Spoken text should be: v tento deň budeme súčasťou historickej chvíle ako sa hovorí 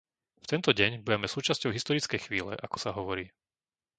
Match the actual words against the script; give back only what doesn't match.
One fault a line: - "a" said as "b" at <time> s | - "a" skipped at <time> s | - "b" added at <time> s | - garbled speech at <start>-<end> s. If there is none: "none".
none